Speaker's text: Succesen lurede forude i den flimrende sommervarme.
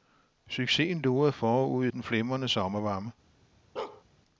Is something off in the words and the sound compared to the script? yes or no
yes